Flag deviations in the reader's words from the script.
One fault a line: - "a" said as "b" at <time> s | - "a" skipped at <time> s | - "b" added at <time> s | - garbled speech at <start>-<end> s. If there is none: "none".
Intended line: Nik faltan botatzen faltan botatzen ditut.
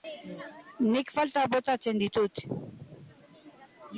- "faltan botatzen" skipped at 2.0 s